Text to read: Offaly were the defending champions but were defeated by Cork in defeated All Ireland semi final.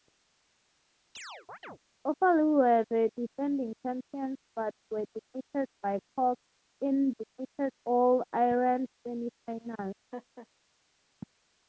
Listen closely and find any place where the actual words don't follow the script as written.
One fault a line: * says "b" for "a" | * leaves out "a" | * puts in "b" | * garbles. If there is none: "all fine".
all fine